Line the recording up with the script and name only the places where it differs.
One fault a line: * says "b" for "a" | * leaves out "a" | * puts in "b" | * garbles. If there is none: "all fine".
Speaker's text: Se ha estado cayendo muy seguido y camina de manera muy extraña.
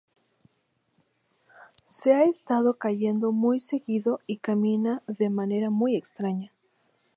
all fine